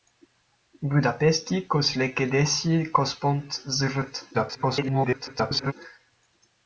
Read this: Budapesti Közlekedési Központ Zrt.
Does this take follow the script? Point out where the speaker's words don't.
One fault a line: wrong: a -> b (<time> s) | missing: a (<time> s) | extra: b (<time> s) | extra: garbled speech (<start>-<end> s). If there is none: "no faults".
extra: garbled speech (4.3-5.7 s)